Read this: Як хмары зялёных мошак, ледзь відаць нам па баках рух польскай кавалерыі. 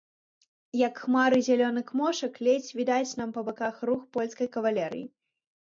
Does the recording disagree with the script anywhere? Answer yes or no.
no